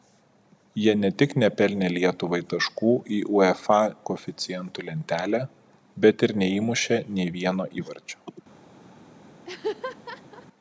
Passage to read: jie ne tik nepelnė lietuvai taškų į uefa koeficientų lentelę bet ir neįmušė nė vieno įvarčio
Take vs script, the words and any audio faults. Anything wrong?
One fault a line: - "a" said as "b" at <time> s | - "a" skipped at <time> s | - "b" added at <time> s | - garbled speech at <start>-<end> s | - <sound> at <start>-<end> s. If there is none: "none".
- laugh at 9.4-10.5 s